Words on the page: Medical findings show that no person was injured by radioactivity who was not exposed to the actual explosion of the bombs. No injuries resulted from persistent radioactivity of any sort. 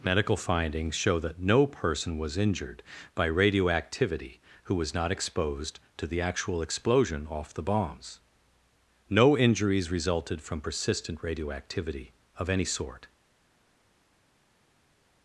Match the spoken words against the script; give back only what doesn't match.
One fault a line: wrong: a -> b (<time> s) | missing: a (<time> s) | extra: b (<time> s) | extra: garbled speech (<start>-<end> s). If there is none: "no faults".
wrong: of -> off (7.3 s)